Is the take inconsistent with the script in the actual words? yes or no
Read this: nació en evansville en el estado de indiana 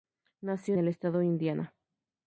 yes